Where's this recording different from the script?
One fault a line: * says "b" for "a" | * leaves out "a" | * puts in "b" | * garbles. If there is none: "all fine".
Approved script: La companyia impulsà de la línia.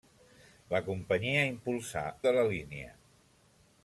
all fine